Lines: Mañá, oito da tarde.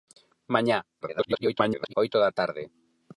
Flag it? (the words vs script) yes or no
yes